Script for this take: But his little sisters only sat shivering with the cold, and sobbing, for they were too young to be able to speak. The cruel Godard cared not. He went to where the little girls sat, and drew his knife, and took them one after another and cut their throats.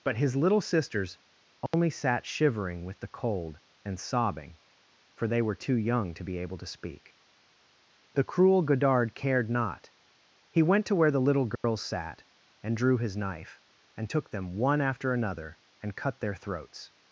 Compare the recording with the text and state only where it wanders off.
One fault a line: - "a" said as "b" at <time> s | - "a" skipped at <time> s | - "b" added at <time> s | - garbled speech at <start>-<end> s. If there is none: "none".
none